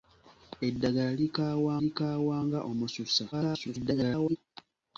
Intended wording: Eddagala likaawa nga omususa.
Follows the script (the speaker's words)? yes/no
no